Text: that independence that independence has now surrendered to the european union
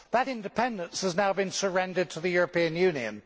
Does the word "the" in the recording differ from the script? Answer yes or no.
no